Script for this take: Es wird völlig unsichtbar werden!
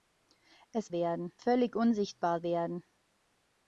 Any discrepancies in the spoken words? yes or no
yes